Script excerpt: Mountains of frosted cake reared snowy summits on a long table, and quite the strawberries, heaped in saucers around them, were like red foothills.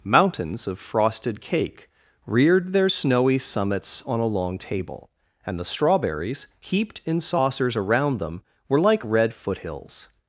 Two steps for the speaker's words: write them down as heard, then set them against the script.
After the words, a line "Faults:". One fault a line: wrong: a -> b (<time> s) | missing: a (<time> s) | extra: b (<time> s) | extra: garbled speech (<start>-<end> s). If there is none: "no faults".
Mountains of frosted cake reared their snowy summits on a long table, and the strawberries, heaped in saucers around them, were like red foothills.
Faults:
extra: their (2.7 s)
missing: quite (5.6 s)